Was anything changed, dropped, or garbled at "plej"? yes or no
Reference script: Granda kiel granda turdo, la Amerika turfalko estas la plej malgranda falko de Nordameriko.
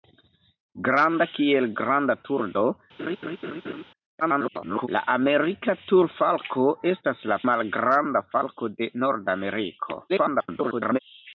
yes